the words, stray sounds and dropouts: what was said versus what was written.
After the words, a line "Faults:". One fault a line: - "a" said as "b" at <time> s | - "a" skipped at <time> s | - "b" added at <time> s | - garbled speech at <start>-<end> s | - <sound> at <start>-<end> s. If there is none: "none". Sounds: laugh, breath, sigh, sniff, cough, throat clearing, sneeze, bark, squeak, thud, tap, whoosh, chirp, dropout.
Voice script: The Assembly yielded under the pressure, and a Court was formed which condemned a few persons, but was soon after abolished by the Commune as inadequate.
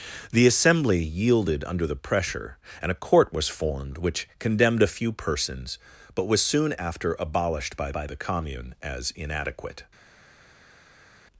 The Assembly yielded under the pressure, and a Court was formed which condemned a few persons, but was soon after abolished by by the Commune as inadequate.
Faults:
- "by" added at 7.9 s